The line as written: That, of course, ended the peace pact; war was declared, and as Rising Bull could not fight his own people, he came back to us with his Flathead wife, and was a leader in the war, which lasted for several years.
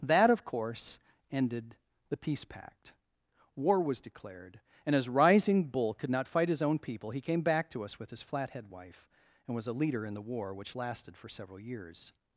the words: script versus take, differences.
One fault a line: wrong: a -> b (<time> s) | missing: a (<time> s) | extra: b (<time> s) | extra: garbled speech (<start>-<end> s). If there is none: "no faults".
no faults